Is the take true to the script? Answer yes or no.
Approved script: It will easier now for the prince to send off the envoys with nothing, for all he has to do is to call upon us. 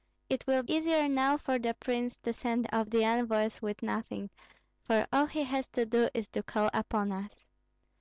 yes